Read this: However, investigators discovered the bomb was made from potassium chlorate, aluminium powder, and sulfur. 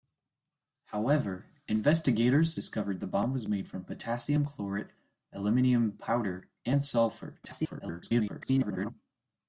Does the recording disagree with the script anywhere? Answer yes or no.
yes